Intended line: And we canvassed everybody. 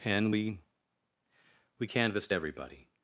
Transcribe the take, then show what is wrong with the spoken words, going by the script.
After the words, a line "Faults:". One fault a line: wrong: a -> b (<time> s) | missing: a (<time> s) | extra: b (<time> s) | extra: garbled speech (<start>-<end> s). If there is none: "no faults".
And we we canvassed everybody.
Faults:
extra: we (1.8 s)